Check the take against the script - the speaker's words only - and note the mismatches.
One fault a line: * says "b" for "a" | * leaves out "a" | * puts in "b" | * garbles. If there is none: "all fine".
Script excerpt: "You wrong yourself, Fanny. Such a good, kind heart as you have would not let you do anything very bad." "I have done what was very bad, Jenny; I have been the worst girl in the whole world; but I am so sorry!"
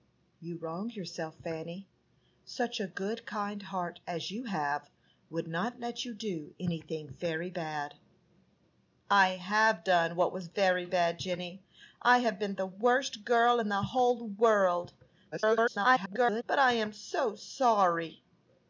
* garbles